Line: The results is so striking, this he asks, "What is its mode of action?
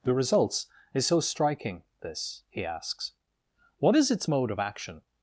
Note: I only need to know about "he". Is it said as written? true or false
true